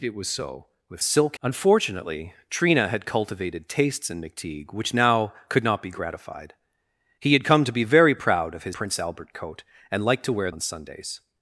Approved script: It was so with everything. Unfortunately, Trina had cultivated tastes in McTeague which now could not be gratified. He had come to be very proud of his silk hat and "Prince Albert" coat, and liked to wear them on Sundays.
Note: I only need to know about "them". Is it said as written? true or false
false